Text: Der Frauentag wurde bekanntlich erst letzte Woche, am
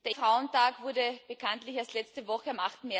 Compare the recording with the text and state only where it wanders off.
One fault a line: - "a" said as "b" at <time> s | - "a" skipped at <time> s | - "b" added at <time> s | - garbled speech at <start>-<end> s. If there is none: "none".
none